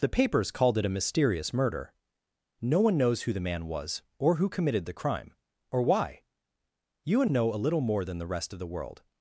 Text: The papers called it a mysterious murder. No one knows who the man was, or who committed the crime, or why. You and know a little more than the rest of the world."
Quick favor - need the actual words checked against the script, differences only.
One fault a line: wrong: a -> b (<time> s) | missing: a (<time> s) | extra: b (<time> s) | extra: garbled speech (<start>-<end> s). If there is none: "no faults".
no faults